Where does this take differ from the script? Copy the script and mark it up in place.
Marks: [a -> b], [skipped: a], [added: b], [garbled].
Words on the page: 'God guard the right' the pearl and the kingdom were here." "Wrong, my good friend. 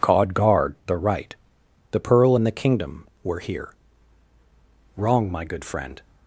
'God guard the right' the pearl and the kingdom were here." "Wrong, my good friend.